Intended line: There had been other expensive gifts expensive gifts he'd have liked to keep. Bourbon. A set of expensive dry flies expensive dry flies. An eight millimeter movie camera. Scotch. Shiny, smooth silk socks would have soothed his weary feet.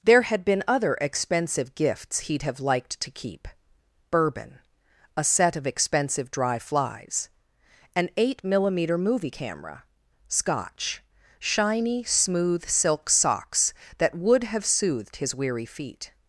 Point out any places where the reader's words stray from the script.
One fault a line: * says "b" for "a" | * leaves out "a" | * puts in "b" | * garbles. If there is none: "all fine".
* leaves out "expensive gifts"
* leaves out "expensive dry flies"
* puts in "that"